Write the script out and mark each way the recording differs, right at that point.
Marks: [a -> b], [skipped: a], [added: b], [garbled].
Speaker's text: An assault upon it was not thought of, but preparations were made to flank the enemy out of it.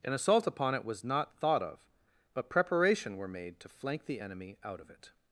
An assault upon it was not thought of, but [preparations -> preparation] were made to flank the enemy out of it.